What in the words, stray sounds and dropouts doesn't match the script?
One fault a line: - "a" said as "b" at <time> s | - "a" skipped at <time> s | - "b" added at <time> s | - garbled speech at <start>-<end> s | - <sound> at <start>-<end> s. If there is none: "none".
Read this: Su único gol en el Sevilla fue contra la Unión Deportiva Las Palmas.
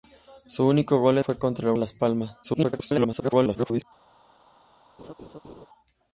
- "en el Sevilla" skipped at 1.2 s
- "Unión Deportiva" skipped at 1.7 s
- garbled speech at 2.4-3.8 s
- laugh at 5.0-5.7 s